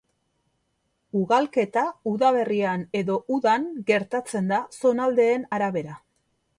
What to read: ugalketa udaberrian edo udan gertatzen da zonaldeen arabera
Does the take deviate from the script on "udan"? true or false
false